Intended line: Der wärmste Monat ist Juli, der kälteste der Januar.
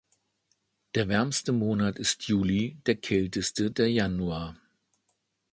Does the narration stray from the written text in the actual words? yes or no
no